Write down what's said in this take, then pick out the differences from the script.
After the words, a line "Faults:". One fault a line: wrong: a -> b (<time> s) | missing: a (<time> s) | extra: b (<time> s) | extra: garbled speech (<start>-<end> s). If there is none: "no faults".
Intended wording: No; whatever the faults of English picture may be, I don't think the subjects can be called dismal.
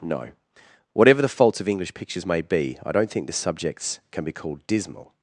No; whatever the faults of English pictures may be, I don't think the subjects can be called dismal.
Faults:
wrong: picture -> pictures (1.9 s)